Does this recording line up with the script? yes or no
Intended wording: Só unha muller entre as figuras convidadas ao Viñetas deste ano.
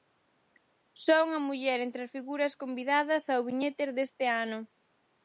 yes